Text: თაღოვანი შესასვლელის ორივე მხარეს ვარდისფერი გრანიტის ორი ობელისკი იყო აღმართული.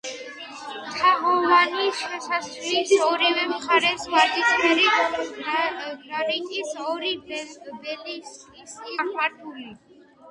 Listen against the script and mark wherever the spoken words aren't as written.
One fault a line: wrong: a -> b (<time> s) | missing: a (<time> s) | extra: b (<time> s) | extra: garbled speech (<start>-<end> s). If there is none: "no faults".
missing: იყო (8.9 s)